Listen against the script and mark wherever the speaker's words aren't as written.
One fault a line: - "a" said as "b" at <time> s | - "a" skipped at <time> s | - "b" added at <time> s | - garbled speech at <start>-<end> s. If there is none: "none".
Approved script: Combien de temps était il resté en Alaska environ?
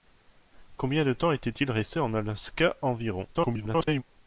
- garbled speech at 3.3-4.0 s